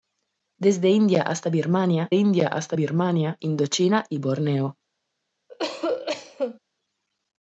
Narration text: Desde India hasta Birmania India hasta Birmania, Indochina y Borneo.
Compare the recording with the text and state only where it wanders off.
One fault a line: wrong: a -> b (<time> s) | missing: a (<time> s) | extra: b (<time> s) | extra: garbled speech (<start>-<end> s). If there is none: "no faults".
no faults